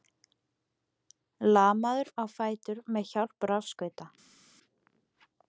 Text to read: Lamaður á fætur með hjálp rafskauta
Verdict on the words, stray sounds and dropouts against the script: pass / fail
pass